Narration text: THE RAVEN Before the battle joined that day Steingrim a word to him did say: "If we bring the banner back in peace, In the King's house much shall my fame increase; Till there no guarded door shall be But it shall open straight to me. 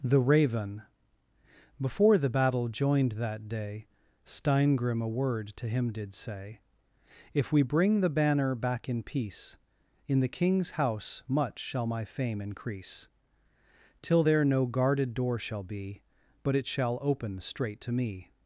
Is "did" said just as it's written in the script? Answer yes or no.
yes